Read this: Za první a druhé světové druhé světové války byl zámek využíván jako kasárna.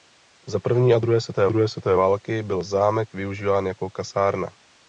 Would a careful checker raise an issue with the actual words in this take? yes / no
no